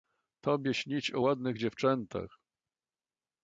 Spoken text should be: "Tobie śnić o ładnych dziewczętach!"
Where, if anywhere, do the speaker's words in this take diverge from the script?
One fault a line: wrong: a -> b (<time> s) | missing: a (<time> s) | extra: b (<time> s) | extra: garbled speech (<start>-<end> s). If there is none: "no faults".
no faults